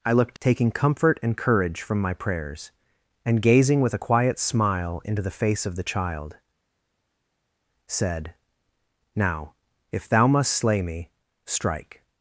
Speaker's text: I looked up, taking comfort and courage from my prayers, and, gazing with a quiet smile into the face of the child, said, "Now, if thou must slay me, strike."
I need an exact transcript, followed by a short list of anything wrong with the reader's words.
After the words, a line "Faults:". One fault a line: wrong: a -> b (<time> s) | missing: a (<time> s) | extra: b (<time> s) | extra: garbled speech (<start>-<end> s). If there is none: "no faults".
I looked taking comfort and courage from my prayers, and, gazing with a quiet smile into the face of the child, said, "Now, if thou must slay me, strike."
Faults:
missing: up (0.4 s)